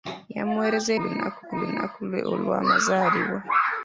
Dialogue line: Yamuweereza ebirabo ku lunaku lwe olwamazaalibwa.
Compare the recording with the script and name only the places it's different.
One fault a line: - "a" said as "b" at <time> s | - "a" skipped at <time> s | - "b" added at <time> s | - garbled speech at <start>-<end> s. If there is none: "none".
- "ebirabo" said as "lunaku" at 1.0 s